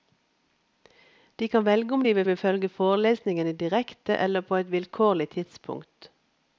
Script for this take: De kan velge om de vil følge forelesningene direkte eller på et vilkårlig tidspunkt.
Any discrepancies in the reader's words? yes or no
yes